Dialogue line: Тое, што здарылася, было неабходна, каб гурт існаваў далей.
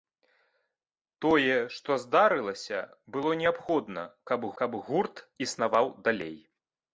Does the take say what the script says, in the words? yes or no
no